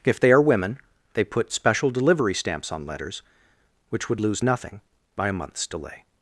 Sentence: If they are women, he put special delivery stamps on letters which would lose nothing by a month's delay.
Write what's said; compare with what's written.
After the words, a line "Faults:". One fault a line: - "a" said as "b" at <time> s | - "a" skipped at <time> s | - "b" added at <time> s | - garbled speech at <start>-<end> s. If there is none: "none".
If they are women, they put special delivery stamps on letters which would lose nothing by a month's delay.
Faults:
- "he" said as "they" at 1.1 s